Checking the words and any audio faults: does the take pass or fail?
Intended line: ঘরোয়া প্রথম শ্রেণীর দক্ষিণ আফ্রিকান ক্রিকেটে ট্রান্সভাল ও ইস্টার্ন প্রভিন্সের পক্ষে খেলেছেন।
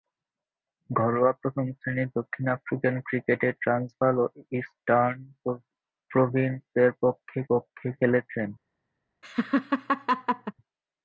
fail